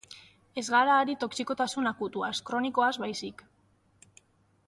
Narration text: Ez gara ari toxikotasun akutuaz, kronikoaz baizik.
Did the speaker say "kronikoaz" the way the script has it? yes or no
yes